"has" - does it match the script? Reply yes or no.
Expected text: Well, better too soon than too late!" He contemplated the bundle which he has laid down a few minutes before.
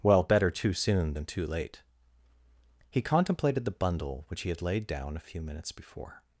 no